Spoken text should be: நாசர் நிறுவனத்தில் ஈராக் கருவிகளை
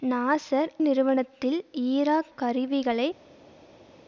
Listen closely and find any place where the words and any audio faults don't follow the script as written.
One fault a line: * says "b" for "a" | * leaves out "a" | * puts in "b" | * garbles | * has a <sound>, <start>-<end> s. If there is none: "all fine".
all fine